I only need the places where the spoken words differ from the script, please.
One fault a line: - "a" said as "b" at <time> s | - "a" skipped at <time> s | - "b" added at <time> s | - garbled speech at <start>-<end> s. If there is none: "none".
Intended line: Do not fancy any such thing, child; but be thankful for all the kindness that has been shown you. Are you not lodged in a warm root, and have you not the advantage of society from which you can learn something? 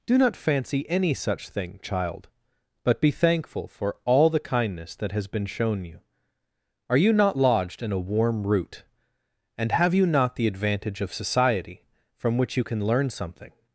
none